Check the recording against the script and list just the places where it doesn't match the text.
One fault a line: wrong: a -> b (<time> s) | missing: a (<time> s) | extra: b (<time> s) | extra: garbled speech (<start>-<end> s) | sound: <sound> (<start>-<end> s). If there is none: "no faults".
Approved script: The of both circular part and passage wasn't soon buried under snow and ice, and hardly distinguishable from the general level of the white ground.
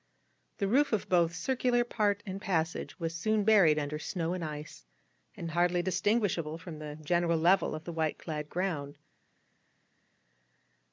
extra: roof (0.7 s)
wrong: wasn't -> was (3.0 s)
extra: clad (8.2 s)